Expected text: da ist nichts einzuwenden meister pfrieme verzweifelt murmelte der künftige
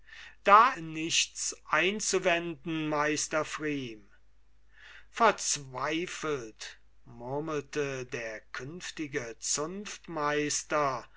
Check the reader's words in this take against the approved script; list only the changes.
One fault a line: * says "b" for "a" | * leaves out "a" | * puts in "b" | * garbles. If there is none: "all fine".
* leaves out "ist"